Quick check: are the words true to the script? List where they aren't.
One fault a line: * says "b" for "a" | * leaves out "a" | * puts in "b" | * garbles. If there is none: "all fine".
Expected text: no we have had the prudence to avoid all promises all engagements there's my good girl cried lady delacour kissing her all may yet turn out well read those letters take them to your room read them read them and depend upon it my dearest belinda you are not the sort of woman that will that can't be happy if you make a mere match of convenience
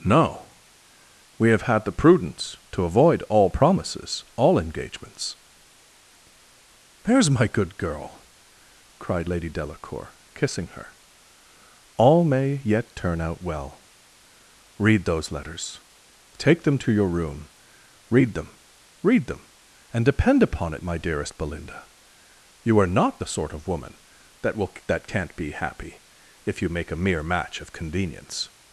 all fine